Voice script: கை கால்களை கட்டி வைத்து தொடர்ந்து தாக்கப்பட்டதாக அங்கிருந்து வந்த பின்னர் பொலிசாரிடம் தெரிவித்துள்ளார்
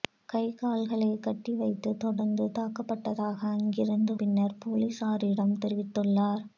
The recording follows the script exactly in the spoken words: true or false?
false